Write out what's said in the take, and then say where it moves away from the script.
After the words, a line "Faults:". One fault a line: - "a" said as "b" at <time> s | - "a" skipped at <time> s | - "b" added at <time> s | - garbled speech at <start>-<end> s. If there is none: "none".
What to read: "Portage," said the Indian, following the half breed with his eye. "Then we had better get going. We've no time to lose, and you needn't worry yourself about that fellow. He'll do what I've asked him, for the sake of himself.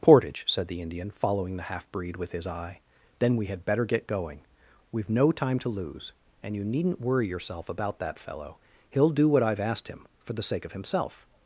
"Portage," said the Indian, following the half breed with his eye. "Then we had better get going. We've no time to lose, and you needn't worry yourself about that fellow. He'll do what I've asked him, for the sake of himself.
Faults:
none